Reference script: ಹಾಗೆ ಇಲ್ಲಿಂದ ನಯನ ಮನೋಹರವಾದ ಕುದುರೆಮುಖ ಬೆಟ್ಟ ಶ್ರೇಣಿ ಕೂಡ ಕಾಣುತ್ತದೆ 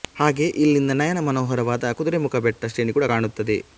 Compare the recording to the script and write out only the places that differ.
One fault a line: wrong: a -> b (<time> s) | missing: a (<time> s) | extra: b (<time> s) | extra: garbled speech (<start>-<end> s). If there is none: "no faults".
no faults